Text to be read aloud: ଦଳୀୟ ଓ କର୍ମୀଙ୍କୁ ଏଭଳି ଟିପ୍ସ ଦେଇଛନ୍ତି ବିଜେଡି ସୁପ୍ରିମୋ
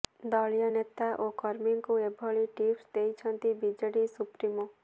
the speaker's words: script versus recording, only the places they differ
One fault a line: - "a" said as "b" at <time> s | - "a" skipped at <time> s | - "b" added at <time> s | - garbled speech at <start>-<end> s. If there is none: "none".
- "ନେତା" added at 0.7 s